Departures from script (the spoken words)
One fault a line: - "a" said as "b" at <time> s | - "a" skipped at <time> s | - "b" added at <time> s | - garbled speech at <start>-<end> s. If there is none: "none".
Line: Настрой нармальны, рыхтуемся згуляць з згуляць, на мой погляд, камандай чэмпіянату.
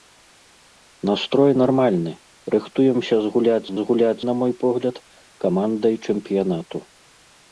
none